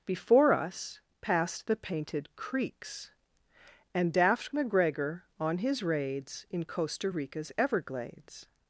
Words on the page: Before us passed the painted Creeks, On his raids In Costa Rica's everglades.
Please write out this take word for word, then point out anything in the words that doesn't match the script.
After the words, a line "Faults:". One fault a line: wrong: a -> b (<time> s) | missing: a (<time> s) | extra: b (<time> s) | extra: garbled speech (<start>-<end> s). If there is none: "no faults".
Before us passed the painted Creeks, And daft McGregor on his raids In Costa Rica's everglades.
Faults:
extra: And daft McGregor (3.9 s)